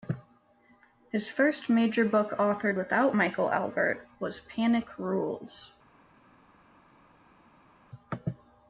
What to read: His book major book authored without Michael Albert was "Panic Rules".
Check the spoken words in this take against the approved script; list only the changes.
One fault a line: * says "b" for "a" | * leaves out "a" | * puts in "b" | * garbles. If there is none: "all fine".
* says "first" for "book"